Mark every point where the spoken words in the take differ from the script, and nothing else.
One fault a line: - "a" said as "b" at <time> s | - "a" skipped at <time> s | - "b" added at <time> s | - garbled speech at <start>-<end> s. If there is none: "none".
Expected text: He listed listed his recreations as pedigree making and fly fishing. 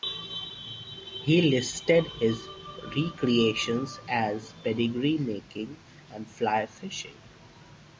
- "listed" skipped at 2.1 s